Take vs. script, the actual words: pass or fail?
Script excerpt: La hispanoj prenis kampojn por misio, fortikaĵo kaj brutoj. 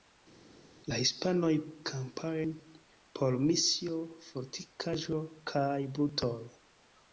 fail